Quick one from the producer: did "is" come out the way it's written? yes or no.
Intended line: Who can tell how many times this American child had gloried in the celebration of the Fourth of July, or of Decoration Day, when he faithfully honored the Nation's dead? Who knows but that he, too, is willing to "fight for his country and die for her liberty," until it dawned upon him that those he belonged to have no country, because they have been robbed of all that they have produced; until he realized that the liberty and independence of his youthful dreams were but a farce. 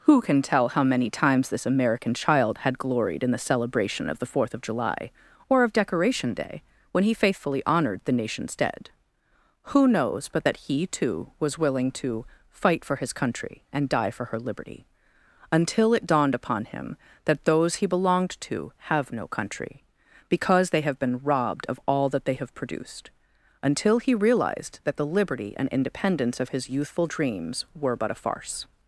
no